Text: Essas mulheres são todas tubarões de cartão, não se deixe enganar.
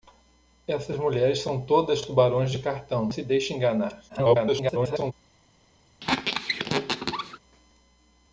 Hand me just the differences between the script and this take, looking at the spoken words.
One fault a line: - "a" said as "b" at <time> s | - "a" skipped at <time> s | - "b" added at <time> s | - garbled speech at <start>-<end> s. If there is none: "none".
- "não" skipped at 3.1 s
- garbled speech at 4.1-5.1 s